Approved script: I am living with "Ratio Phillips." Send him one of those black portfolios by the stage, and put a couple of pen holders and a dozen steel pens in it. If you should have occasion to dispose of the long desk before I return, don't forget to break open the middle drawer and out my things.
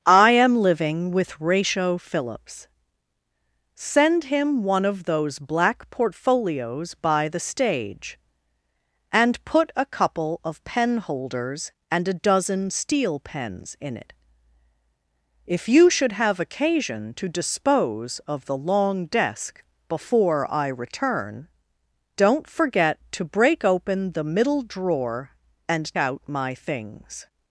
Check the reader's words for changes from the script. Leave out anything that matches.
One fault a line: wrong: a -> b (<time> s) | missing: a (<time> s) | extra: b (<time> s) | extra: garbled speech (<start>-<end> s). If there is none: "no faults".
no faults